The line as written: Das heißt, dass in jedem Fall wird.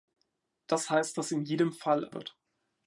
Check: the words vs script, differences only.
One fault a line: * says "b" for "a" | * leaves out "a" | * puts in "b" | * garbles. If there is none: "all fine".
all fine